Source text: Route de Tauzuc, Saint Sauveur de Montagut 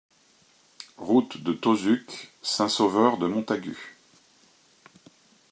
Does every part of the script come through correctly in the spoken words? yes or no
yes